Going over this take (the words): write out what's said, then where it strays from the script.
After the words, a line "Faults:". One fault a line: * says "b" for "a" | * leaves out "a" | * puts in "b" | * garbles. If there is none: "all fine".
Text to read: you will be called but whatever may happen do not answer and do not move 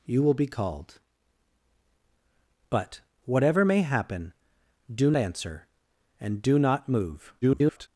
you will be called but whatever may happen do answer and do not move [garbled]
Faults:
* leaves out "not"
* garbles